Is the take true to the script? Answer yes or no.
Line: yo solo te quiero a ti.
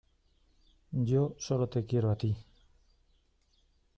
yes